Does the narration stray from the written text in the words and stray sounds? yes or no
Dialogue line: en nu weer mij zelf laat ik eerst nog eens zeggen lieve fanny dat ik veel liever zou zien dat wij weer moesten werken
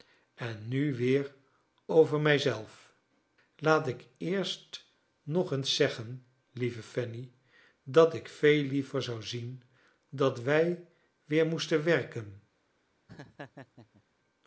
yes